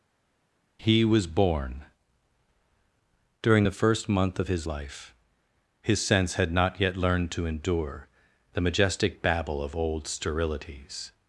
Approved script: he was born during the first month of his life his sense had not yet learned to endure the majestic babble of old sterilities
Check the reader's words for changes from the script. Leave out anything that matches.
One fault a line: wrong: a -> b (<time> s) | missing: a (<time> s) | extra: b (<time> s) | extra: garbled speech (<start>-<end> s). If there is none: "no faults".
no faults